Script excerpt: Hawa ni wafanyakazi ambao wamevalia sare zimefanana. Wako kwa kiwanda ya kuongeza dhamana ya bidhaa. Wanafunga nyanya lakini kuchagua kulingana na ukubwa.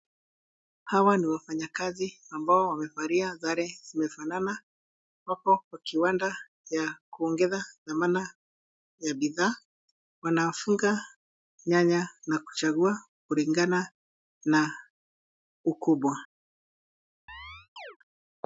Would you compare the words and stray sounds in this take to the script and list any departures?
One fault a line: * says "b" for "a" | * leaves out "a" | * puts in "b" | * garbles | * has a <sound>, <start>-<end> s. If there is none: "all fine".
* says "na" for "lakini"
* has a chirp, 17.3-18.0 s